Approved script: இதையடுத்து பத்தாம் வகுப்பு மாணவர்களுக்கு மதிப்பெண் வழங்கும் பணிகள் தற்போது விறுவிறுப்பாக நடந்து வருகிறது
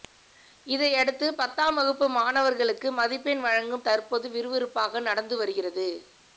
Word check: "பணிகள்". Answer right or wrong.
wrong